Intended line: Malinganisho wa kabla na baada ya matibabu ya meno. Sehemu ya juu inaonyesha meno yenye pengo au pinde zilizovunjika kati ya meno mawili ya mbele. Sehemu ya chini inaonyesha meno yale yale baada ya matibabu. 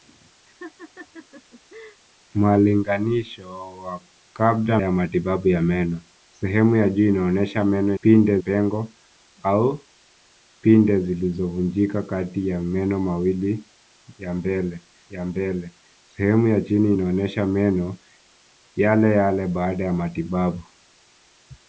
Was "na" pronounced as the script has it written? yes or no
no